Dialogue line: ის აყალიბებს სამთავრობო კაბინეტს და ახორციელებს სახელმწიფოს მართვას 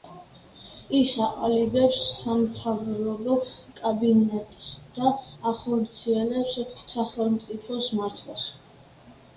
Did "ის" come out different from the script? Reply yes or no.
no